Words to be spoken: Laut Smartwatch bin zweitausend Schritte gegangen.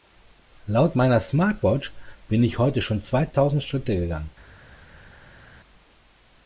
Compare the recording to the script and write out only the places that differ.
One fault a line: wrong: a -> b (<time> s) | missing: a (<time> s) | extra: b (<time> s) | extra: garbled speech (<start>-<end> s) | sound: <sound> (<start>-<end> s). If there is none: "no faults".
extra: meiner (1.0 s)
extra: ich heute schon (2.4 s)